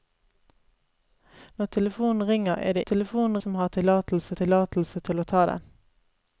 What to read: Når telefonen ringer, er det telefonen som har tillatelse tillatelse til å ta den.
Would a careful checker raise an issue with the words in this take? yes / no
no